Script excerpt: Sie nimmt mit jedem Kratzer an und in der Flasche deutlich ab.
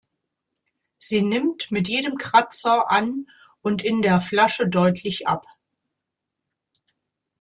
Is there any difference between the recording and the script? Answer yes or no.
no